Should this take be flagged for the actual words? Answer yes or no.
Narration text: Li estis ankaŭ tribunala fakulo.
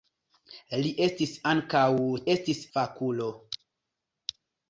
yes